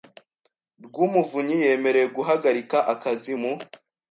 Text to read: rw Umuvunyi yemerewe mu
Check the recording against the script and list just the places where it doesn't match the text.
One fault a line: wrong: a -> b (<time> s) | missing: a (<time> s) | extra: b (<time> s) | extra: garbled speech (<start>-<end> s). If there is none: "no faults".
extra: guhagarika akazi (2.2 s)